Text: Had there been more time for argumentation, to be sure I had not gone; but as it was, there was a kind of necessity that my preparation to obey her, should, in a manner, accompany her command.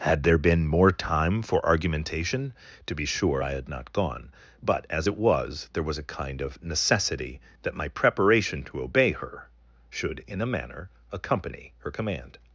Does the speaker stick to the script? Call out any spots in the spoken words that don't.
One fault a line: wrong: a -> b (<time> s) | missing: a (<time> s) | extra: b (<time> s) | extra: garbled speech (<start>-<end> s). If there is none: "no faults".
no faults